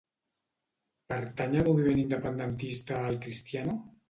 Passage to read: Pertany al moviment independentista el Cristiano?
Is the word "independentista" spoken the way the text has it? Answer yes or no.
yes